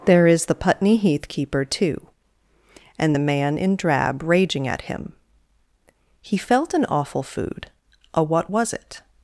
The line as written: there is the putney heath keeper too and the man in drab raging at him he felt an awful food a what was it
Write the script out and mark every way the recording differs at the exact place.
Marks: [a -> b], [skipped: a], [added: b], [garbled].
there is the putney heath keeper too and the man in drab raging at him he felt an awful food a what was it